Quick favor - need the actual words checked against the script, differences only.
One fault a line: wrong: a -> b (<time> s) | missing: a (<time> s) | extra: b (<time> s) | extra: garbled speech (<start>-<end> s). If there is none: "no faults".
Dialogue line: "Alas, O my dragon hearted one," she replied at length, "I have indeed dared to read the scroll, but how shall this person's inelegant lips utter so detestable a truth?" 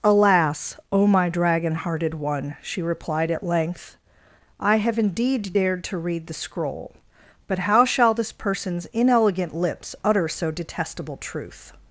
missing: a (11.2 s)